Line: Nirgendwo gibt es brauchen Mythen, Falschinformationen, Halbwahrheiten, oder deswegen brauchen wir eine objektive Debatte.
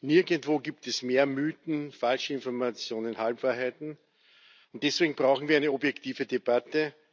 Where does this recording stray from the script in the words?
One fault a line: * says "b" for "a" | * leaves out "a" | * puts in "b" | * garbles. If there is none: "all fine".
* says "mehr" for "brauchen"
* says "und" for "oder"